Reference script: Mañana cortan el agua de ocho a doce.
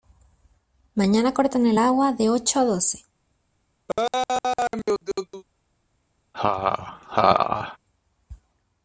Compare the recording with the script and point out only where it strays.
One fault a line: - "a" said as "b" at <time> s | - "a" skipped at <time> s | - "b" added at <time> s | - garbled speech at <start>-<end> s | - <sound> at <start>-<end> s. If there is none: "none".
- laugh at 3.9-5.4 s
- laugh at 6.3-7.8 s